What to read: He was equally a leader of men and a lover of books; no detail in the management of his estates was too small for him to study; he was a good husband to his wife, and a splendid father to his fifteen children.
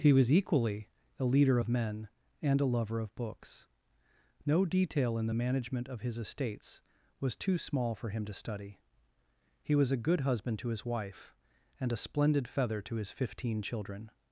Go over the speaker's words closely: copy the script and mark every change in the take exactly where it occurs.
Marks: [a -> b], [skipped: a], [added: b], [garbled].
He was equally a leader of men and a lover of books; no detail in the management of his estates was too small for him to study; he was a good husband to his wife, and a splendid [father -> feather] to his fifteen children.